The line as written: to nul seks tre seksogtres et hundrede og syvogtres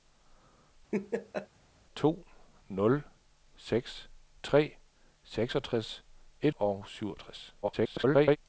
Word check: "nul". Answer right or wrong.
right